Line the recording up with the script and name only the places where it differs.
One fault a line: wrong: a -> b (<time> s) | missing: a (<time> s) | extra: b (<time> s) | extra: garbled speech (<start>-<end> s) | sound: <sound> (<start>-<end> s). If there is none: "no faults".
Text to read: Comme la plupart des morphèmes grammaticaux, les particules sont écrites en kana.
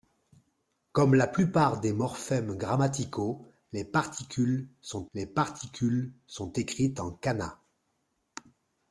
extra: les particules sont (5.1 s)